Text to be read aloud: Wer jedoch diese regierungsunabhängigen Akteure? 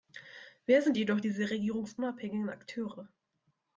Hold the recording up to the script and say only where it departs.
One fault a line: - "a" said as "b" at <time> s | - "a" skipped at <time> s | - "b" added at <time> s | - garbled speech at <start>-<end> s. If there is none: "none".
- "sind" added at 0.8 s